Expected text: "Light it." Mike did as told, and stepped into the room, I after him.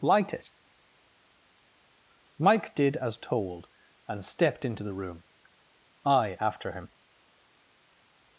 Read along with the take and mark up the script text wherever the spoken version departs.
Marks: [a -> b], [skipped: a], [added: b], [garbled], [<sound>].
"Light it." Mike did as told, and stepped into the room, I after him.